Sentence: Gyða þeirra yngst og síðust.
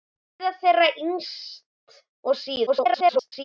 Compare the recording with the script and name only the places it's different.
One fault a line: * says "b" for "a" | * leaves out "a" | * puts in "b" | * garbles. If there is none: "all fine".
* garbles